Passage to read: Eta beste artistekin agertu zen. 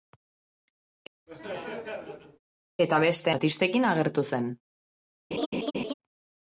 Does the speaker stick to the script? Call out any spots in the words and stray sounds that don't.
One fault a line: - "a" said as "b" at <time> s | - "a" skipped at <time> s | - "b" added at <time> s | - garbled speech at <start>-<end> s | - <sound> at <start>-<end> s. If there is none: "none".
- laugh at 1.3-2.4 s
- laugh at 5.3-5.9 s